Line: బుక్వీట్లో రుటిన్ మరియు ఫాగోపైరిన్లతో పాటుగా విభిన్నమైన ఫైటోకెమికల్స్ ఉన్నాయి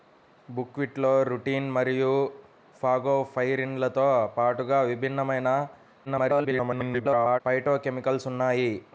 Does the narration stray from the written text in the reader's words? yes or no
yes